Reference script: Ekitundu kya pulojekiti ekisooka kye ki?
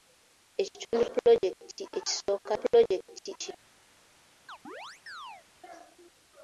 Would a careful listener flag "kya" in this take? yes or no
yes